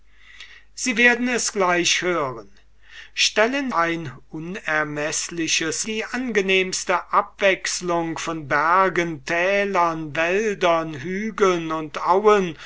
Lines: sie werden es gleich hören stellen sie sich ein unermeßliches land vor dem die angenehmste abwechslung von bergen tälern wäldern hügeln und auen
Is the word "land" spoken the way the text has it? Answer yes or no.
no